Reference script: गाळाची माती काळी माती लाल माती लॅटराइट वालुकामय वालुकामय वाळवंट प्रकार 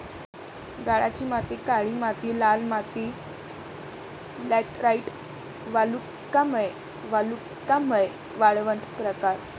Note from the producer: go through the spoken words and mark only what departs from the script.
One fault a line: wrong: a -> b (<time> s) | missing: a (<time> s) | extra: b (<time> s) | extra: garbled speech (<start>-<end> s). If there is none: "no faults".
no faults